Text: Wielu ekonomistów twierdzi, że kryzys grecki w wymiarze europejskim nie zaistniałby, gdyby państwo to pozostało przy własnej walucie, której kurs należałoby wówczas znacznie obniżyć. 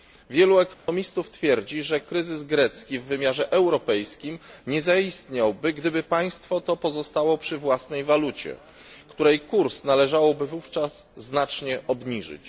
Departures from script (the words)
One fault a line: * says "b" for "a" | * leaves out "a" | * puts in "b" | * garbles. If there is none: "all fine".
all fine